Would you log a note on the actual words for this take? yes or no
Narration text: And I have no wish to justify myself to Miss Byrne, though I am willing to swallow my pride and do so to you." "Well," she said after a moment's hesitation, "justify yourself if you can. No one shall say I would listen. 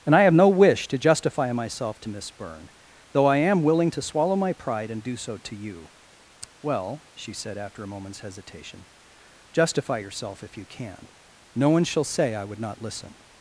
yes